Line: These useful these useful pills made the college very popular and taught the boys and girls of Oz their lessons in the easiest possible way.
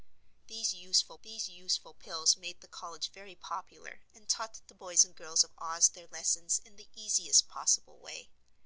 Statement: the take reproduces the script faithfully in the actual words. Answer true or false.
true